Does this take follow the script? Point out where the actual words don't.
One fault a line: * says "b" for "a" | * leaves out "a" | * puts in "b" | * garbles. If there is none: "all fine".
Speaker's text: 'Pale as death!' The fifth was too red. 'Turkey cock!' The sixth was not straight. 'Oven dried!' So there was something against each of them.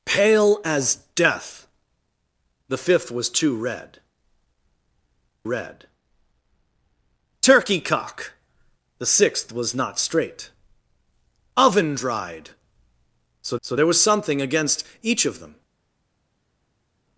* puts in "red"
* puts in "so"